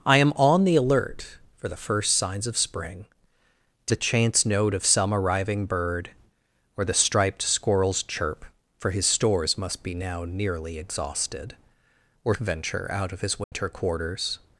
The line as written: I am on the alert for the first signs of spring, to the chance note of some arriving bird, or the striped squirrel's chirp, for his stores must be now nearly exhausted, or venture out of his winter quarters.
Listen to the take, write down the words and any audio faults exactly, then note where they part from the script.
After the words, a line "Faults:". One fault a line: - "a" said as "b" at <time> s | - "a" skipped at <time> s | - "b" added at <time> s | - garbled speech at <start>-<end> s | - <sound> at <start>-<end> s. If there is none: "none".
I am on the alert for the first signs of spring, to the chance note of some arriving bird, or the striped squirrel's chirp, for his stores must be now nearly exhausted, or venture out of his winter quarters.
Faults:
- dropout at 13.4-13.5 s